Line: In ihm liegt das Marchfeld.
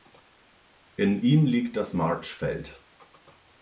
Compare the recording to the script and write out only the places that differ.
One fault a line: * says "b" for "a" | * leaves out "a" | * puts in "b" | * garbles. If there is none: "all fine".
all fine